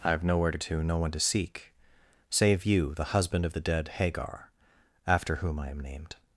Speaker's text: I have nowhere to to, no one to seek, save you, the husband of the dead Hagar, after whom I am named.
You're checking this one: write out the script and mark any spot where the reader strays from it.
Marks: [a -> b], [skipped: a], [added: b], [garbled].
I have nowhere to to, no one to seek, save you, the husband of the dead Hagar, after whom I am named.